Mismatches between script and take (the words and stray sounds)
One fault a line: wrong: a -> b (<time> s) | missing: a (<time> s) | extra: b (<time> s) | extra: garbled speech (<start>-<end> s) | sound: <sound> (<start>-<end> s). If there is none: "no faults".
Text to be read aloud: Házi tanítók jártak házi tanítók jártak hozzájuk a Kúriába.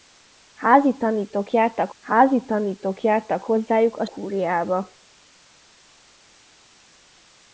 no faults